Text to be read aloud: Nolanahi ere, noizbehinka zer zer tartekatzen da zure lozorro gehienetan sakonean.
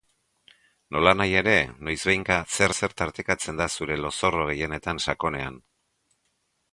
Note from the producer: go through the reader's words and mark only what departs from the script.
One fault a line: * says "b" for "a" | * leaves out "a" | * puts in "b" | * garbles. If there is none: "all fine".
all fine